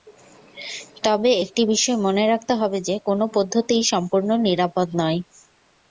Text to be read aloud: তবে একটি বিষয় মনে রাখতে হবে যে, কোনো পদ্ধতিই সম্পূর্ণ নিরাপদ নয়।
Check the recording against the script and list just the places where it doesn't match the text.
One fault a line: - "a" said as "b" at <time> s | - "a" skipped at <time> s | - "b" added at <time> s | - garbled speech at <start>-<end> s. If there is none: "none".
none